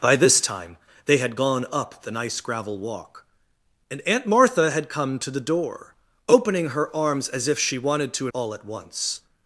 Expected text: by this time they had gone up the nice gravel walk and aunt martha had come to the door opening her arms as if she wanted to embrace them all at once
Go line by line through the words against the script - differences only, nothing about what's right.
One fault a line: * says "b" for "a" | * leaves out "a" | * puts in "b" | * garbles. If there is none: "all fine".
* leaves out "embrace them"